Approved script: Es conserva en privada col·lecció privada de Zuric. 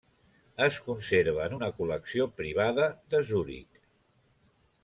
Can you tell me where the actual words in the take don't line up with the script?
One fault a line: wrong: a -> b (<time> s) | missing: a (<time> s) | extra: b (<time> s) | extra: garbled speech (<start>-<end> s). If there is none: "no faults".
wrong: privada -> una (1.6 s)